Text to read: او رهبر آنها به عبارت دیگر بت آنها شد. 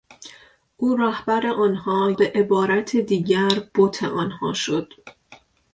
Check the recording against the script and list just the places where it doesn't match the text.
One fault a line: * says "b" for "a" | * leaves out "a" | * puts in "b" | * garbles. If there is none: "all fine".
all fine